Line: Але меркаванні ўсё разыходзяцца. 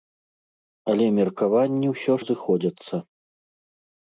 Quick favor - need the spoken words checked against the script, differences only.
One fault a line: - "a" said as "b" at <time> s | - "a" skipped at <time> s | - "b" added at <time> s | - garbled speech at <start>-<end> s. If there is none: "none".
none